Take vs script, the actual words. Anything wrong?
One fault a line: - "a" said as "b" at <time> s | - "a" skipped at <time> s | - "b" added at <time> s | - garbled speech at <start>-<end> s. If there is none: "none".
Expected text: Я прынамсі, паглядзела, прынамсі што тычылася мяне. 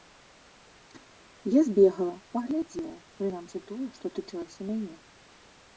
- "прынамсі" said as "збегала" at 1.7 s
- "тое" added at 3.7 s